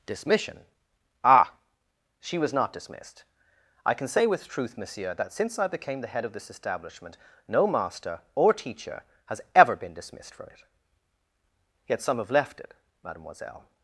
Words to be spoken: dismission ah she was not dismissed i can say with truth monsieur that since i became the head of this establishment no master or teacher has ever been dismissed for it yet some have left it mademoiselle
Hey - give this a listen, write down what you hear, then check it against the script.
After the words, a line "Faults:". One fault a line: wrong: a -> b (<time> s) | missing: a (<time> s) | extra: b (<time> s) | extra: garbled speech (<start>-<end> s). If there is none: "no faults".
dismission ah she was not dismissed i can say with truth monsieur that since i became the head of this establishment no master or teacher has ever been dismissed for it yet some have left it mademoiselle
Faults:
no faults